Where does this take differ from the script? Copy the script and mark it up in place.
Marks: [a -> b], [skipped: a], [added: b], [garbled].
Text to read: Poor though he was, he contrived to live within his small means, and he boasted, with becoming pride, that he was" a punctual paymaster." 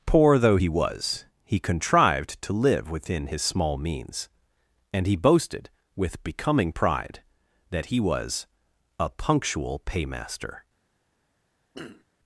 Poor though he was, he contrived to live within his small means, and he boasted, with becoming pride, that he was" a punctual paymaster."